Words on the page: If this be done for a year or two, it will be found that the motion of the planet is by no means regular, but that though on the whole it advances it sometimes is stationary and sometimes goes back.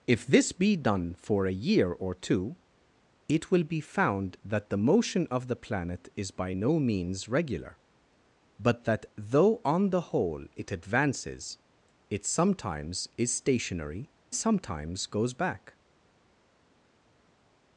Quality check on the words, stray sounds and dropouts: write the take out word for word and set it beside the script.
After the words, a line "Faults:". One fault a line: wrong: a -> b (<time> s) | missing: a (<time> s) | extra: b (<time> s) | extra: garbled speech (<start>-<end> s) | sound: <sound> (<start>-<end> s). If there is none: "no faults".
If this be done for a year or two, it will be found that the motion of the planet is by no means regular, but that though on the whole it advances it sometimes is stationary sometimes goes back.
Faults:
missing: and (14.1 s)